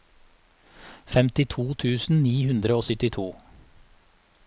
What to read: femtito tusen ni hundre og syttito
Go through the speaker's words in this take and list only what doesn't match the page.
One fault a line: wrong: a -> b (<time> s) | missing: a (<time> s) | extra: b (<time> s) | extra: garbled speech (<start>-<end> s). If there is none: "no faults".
no faults